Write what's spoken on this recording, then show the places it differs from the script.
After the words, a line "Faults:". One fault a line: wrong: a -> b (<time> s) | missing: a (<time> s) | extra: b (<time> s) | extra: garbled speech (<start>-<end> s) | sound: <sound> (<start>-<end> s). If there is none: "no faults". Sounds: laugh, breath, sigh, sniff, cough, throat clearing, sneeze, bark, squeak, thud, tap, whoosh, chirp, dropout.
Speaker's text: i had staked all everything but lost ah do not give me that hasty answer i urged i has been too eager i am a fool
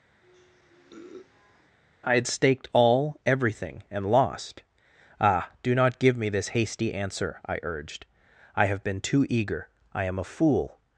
i had staked all everything and lost ah do not give me this hasty answer i urged i have been too eager i am a fool
Faults:
sound: sniff (0.2-1.8 s)
wrong: but -> and (3.9 s)
wrong: that -> this (6.3 s)
wrong: has -> have (8.7 s)